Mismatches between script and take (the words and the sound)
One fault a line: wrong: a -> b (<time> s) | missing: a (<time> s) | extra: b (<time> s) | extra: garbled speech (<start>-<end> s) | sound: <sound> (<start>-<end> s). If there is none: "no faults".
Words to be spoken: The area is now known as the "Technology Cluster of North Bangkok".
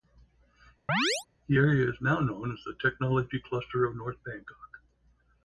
sound: chirp (0.9-1.3 s)